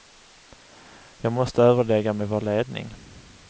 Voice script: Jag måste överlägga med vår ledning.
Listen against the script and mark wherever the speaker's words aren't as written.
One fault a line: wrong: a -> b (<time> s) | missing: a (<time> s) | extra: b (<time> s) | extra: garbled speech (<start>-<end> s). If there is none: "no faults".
no faults